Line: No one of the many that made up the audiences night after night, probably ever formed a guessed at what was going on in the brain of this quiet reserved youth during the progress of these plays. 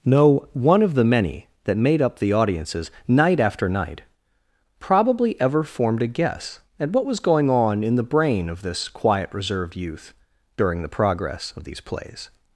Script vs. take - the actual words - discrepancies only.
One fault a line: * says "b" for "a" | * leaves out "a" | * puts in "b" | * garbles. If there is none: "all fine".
* says "guess" for "guessed"